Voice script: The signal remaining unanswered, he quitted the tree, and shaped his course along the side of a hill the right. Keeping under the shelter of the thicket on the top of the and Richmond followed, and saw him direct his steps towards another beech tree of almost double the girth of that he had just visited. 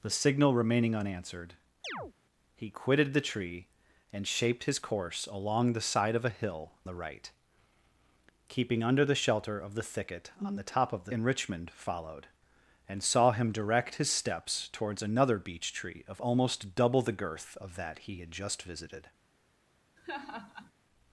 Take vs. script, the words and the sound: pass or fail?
fail